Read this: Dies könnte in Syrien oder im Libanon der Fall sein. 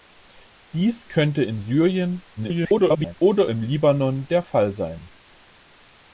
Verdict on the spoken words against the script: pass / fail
fail